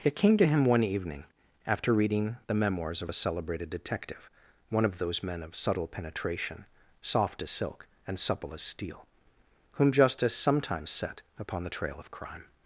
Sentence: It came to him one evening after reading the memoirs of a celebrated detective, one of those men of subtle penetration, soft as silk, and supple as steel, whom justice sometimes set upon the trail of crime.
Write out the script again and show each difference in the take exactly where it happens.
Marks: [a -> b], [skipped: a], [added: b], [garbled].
It came to him one evening after reading the memoirs of a celebrated detective, one of those men of subtle penetration, soft as silk, and supple as steel, whom justice sometimes set upon the trail of crime.